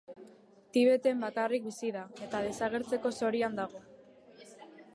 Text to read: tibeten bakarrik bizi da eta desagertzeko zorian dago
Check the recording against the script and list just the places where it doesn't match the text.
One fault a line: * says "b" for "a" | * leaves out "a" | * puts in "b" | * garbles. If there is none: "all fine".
all fine